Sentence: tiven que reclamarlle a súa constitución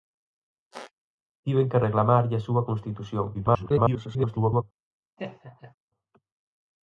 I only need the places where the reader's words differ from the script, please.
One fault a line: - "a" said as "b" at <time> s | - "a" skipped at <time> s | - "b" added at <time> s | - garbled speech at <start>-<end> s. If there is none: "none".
- garbled speech at 3.3-4.6 s